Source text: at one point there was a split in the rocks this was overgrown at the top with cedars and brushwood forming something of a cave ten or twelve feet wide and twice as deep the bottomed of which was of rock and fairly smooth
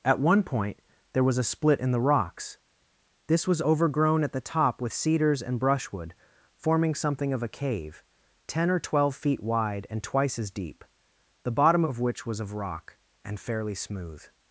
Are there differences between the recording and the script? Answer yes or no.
yes